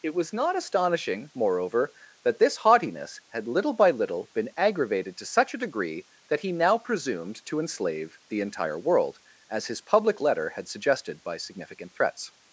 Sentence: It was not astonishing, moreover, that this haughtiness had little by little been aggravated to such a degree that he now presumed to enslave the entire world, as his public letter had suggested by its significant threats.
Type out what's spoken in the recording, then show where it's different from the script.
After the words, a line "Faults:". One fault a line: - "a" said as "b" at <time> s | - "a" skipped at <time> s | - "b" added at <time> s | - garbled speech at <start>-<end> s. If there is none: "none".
It was not astonishing, moreover, that this haughtiness had little by little been aggravated to such a degree that he now presumed to enslave the entire world, as his public letter had suggested by significant threats.
Faults:
- "its" skipped at 11.4 s